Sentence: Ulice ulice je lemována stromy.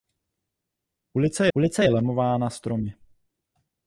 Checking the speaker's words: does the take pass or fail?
pass